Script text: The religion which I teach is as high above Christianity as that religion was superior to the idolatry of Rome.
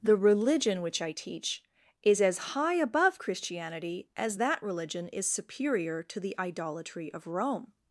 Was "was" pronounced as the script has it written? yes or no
no